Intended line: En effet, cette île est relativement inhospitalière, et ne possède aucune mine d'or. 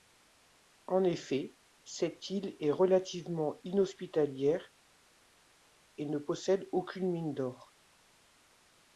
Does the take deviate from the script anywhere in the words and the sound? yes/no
no